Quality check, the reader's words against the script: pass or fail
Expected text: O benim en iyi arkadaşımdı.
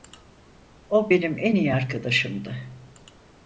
pass